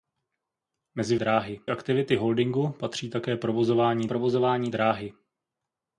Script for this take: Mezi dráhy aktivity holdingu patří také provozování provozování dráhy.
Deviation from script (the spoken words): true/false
false